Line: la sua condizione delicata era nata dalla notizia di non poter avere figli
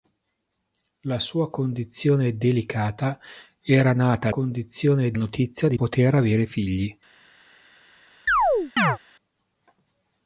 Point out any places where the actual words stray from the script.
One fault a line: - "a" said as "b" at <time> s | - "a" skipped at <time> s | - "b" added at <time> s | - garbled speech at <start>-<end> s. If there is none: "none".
- "dalla" said as "condizione" at 4.3 s
- "non" skipped at 5.8 s